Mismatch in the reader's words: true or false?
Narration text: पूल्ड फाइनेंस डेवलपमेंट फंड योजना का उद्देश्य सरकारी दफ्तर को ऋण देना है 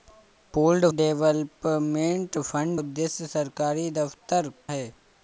true